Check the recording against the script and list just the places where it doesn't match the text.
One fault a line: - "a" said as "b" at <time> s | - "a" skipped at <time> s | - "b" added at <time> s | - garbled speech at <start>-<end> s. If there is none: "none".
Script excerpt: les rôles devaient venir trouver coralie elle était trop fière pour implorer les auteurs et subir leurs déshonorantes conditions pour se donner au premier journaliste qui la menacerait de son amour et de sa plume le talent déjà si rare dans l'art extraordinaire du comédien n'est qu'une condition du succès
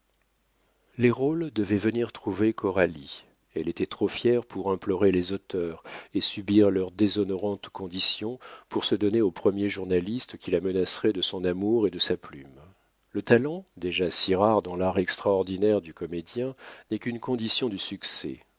none